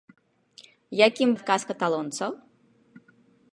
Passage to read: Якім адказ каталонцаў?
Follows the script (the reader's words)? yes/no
yes